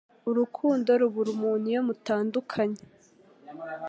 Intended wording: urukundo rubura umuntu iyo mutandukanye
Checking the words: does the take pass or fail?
pass